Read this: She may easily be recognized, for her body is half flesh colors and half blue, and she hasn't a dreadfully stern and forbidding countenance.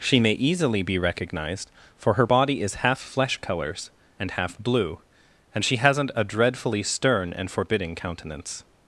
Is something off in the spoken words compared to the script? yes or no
no